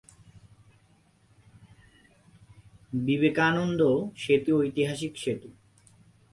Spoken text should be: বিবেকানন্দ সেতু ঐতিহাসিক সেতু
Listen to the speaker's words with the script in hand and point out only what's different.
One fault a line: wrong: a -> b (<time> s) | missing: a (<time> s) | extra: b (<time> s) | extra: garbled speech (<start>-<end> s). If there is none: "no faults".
no faults